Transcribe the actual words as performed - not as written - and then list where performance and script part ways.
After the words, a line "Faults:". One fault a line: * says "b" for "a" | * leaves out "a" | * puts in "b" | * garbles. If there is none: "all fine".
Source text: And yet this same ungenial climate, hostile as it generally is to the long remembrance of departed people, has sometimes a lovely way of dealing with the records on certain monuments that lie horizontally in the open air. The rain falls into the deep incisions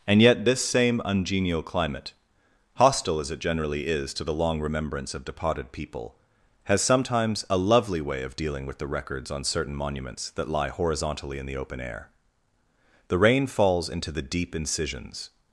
And yet this same ungenial climate, hostile as it generally is to the long remembrance of departed people, has sometimes a lovely way of dealing with the records on certain monuments that lie horizontally in the open air. The rain falls into the deep incisions
Faults:
all fine